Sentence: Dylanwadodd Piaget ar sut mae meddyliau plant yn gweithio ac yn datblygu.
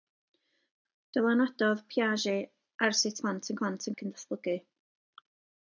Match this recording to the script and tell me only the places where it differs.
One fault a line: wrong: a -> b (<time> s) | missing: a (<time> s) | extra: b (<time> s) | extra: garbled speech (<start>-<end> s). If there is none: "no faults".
missing: mae meddyliau (3.2 s)
wrong: gweithio -> plant (3.6 s)